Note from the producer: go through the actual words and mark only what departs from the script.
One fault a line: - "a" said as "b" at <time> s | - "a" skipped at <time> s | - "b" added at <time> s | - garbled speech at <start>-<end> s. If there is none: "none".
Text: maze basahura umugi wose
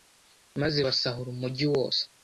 none